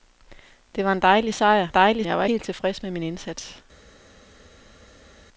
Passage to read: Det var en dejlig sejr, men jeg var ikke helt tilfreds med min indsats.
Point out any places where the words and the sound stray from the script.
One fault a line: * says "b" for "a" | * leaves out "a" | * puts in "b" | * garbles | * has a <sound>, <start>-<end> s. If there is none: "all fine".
* says "dejlig" for "men"
* leaves out "ikke"